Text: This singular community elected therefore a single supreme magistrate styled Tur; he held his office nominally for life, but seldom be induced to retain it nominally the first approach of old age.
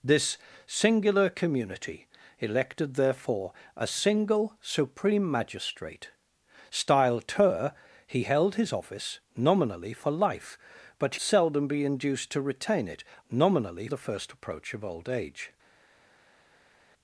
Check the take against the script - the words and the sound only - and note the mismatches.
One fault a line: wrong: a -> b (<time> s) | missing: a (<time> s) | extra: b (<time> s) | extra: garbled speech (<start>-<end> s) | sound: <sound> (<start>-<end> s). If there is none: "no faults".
no faults